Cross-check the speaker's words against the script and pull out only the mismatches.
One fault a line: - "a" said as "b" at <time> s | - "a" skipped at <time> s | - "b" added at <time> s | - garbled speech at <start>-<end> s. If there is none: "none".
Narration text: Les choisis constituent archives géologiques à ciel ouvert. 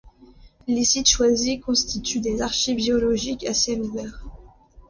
- "sites" added at 0.8 s
- "des" added at 2.2 s